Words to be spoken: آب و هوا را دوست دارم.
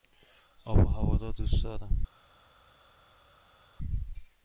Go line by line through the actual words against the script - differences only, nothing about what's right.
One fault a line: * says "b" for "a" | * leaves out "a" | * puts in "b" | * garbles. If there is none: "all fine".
all fine